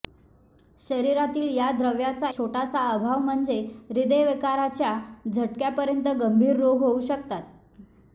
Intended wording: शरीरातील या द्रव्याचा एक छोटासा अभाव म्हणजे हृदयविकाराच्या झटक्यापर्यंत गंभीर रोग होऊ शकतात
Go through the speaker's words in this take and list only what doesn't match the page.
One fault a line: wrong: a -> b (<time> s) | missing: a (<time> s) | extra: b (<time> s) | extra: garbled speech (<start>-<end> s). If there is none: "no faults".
missing: एक (2.3 s)